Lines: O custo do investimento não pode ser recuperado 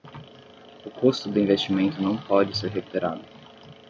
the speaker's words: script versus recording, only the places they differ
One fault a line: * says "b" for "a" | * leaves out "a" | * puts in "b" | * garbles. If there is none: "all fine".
all fine